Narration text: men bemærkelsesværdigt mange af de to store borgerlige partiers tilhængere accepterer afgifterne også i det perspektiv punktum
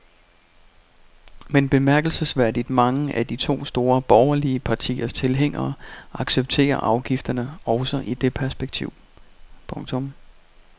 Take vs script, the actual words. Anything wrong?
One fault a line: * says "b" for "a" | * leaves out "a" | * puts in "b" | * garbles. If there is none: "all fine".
all fine